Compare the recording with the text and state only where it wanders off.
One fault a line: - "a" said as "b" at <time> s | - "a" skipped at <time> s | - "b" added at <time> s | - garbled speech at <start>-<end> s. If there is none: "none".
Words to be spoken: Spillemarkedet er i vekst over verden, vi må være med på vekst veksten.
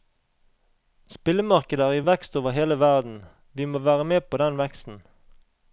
- "hele" added at 2.6 s
- "vekst" said as "den" at 4.4 s